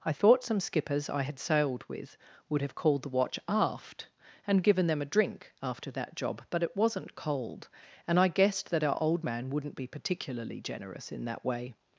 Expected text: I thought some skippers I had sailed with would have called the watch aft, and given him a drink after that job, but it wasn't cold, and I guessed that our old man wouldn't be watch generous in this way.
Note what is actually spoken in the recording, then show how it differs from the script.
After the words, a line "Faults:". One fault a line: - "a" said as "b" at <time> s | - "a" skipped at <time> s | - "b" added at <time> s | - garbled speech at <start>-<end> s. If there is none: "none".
I thought some skippers I had sailed with would have called the watch aft, and given them a drink after that job, but it wasn't cold, and I guessed that our old man wouldn't be particularly generous in that way.
Faults:
- "him" said as "them" at 4.9 s
- "watch" said as "particularly" at 9.9 s
- "this" said as "that" at 11.3 s